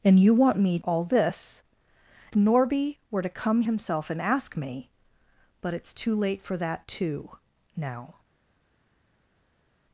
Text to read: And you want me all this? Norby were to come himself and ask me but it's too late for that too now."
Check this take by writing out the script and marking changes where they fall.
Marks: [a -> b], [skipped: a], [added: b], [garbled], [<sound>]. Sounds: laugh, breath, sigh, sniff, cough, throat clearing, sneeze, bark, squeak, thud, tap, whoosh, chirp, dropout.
And you want me all this? Norby were to come himself and ask me but it's too late for that too now."